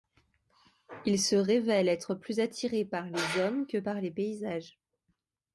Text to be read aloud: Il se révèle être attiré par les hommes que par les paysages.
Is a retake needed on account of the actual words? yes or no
yes